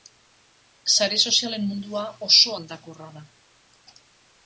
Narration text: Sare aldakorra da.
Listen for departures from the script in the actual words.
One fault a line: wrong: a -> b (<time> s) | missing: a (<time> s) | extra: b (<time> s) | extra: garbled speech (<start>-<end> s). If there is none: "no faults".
extra: sozialen mundua oso (1.3 s)